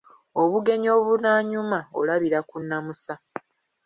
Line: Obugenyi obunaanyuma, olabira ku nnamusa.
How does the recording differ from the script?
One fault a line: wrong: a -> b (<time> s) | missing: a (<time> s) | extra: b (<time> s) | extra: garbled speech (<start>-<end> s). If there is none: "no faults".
no faults